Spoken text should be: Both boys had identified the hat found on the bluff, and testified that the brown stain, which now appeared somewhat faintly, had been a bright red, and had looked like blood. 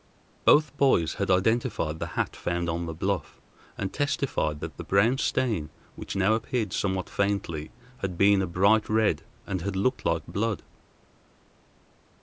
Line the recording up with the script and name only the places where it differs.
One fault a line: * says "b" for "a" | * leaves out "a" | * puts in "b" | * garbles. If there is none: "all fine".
all fine